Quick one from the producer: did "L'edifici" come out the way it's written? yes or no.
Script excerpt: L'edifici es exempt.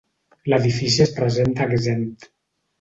yes